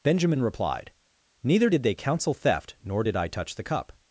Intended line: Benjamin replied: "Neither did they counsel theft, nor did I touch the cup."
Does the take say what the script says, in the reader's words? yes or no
yes